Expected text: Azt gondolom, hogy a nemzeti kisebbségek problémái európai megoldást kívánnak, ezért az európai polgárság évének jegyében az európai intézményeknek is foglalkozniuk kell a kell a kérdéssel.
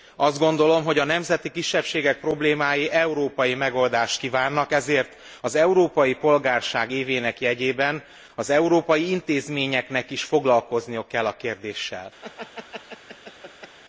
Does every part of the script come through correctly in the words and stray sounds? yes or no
no